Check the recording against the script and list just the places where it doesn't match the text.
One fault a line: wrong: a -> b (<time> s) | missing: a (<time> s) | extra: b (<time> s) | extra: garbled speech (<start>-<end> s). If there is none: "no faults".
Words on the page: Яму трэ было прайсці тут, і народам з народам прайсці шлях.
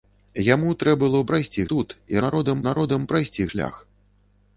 no faults